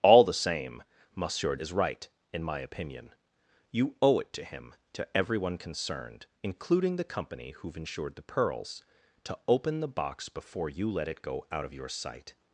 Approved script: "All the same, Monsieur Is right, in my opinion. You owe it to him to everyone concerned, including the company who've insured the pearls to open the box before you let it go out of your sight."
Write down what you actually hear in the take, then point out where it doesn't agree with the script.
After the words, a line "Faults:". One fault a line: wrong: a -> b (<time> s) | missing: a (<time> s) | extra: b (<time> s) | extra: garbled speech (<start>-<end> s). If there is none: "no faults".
"All the same, Monsieur Is right, in my opinion. You owe it to him to everyone concerned, including the company who've insured the pearls to open the box before you let it go out of your sight."
Faults:
no faults